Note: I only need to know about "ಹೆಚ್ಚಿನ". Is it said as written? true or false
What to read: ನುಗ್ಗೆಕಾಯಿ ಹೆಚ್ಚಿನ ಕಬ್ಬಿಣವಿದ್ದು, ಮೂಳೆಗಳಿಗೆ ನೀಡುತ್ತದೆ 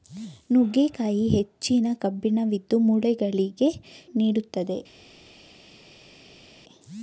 true